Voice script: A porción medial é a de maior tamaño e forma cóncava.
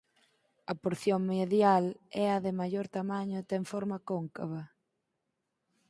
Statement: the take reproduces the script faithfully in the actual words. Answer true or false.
false